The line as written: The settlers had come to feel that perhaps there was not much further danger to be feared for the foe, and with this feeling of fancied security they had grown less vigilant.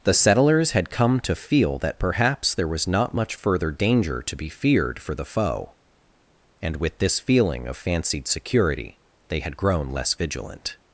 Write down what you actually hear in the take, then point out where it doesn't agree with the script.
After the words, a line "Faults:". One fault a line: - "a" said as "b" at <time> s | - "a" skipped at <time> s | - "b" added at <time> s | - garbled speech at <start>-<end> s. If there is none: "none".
The settlers had come to feel that perhaps there was not much further danger to be feared for the foe, and with this feeling of fancied security they had grown less vigilant.
Faults:
none